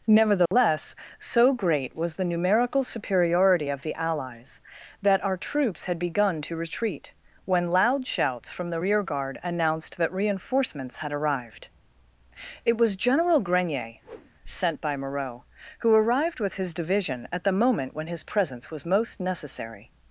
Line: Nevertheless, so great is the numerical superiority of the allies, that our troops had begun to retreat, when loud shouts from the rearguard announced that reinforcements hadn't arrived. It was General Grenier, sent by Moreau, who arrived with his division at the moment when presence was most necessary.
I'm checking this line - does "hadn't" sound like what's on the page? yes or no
no